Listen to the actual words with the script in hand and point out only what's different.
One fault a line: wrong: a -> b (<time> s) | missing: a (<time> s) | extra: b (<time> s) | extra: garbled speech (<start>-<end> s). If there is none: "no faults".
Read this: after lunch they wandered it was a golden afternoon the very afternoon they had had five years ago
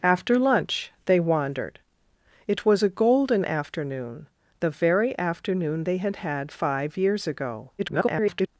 extra: garbled speech (7.8-8.5 s)